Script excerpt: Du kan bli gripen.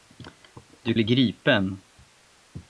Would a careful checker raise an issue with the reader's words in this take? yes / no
yes